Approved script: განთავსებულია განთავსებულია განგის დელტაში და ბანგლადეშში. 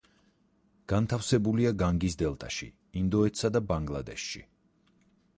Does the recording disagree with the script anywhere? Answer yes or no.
yes